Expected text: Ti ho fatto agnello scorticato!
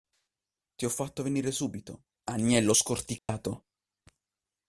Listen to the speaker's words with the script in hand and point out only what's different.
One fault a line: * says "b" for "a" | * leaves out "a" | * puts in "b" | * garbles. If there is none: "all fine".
* puts in "venire subito"